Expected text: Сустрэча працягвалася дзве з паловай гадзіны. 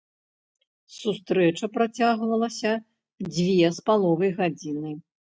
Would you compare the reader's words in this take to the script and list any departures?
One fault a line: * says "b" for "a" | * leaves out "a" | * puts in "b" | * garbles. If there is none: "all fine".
all fine